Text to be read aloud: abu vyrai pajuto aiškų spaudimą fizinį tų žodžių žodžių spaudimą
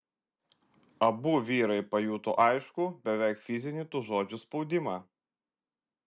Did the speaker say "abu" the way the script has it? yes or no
yes